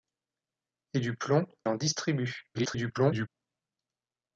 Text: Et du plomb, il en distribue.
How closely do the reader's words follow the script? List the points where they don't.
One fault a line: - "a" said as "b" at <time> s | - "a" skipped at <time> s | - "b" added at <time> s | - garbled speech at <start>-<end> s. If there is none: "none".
- "il" skipped at 1.4 s
- garbled speech at 2.5-3.3 s